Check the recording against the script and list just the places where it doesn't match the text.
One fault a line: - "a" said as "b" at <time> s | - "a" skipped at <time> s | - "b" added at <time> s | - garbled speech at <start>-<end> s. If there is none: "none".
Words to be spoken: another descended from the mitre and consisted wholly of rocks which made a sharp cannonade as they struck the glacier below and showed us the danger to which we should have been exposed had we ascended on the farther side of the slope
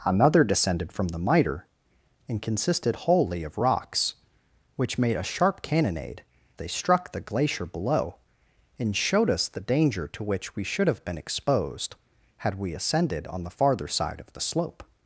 - "as" skipped at 6.2 s